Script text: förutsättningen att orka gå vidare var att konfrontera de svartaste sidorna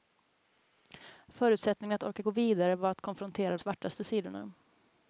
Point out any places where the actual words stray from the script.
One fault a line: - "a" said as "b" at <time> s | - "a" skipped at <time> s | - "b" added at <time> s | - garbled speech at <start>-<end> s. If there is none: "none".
- "de" skipped at 3.6 s